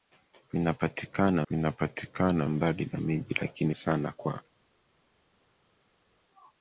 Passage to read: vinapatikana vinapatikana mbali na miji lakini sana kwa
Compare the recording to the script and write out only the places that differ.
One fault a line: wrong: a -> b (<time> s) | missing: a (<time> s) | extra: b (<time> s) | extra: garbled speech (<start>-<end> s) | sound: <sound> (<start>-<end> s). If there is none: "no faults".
no faults